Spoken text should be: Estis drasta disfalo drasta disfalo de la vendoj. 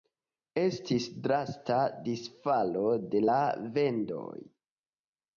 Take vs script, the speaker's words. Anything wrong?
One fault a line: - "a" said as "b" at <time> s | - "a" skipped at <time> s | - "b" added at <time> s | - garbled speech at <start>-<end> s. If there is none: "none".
- "drasta disfalo" skipped at 2.8 s